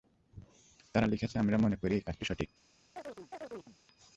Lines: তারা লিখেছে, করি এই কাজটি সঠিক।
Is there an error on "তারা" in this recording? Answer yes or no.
no